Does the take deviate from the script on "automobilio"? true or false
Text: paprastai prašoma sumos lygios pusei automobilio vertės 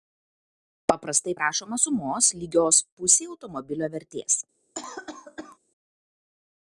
false